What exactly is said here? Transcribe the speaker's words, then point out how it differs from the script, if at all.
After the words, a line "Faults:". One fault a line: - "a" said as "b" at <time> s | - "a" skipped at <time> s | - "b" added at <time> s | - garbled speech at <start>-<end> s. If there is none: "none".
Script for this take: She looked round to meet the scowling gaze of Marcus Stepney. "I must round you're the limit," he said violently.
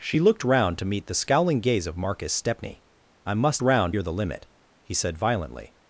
She looked round to meet the scowling gaze of Marcus Stepney. "I must round you're the limit," he said violently.
Faults:
none